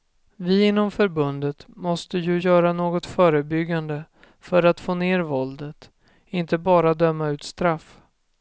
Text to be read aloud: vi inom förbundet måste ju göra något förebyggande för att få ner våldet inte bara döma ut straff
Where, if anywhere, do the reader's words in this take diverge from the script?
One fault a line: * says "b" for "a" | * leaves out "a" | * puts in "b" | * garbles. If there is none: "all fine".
all fine